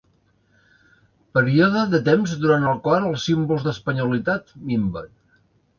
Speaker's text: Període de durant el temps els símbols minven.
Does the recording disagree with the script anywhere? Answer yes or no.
yes